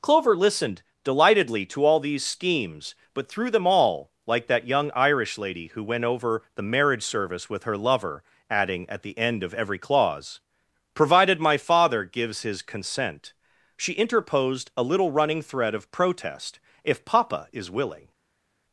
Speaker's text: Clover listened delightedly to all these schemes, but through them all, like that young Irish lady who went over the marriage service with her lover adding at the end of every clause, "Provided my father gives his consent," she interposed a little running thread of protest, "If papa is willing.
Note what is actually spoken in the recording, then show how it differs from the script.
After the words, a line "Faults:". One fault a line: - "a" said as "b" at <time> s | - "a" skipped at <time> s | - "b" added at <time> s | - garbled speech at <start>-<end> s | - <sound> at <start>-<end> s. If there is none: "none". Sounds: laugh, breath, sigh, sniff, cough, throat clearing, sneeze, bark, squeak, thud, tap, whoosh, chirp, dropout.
Clover listened delightedly to all these schemes, but through them all, like that young Irish lady who went over the marriage service with her lover adding at the end of every clause, "Provided my father gives his consent," she interposed a little running thread of protest, "If papa is willing.
Faults:
none